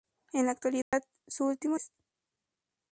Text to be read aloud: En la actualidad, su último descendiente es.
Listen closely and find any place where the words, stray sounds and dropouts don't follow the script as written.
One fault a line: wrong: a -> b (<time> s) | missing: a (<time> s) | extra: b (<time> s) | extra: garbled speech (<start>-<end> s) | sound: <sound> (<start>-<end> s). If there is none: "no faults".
sound: dropout (0.8-0.9 s)
missing: descendiente (1.8 s)